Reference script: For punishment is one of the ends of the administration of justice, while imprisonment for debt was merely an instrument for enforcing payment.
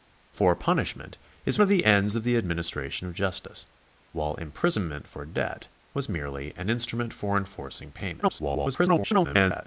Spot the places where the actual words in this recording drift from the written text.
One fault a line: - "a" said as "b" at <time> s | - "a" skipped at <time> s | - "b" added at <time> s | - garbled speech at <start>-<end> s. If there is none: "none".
- "one" skipped at 1.6 s
- garbled speech at 8.2-9.7 s